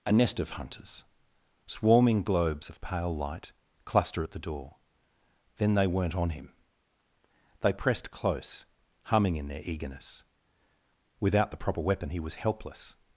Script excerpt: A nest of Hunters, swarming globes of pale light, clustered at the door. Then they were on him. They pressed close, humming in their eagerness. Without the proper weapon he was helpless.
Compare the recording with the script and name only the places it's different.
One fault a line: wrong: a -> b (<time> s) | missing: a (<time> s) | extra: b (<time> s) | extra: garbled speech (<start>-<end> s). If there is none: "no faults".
wrong: clustered -> cluster (3.9 s)
wrong: were -> weren't (5.9 s)